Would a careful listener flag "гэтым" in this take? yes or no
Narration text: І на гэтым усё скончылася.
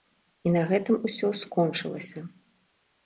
no